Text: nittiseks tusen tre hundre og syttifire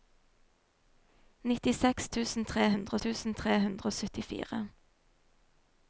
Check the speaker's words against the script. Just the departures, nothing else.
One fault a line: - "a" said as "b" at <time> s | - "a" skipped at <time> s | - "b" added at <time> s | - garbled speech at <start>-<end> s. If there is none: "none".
- "tusen tre hundre" added at 3.0 s